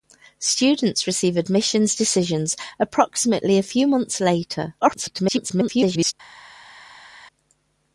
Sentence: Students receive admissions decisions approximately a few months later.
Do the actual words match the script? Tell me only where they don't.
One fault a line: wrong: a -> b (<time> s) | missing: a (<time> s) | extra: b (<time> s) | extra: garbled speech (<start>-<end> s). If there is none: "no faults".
extra: garbled speech (4.8-6.1 s)